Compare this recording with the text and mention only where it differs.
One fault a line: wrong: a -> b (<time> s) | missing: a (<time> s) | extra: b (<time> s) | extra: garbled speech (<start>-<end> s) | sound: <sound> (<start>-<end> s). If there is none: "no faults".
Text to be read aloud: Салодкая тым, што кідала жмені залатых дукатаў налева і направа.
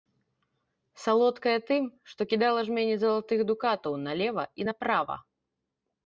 no faults